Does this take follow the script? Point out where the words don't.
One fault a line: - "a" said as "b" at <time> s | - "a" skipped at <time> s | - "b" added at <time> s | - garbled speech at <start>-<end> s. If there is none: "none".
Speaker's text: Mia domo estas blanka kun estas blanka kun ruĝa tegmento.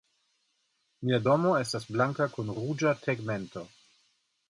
- "estas blanka kun" skipped at 2.5 s